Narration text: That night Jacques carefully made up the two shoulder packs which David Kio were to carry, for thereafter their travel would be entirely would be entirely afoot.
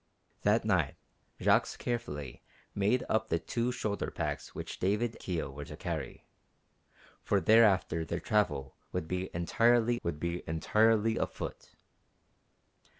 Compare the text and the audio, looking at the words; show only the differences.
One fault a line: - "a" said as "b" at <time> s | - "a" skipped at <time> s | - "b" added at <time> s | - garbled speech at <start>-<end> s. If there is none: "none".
none